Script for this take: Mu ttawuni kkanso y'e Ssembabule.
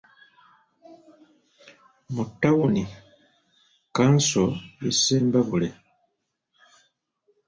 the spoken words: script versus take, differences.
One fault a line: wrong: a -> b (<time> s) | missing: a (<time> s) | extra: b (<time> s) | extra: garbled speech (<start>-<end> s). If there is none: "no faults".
no faults